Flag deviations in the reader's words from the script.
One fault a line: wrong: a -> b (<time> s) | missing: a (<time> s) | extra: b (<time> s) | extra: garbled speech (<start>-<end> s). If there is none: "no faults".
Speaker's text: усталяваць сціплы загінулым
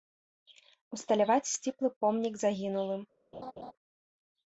extra: помнік (2.0 s)